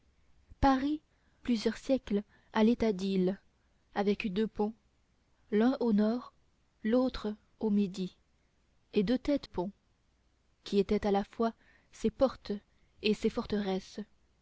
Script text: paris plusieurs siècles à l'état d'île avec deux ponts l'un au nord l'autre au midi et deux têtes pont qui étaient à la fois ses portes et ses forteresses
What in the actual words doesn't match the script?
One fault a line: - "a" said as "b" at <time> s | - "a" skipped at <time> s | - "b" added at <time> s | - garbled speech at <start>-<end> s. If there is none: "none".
none